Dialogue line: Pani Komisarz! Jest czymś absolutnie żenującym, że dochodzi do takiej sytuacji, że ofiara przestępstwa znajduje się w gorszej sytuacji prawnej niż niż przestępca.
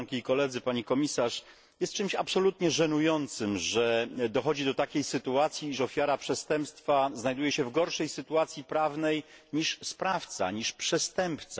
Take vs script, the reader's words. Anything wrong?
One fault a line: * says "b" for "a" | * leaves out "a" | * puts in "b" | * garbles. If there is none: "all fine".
* puts in "sprawca"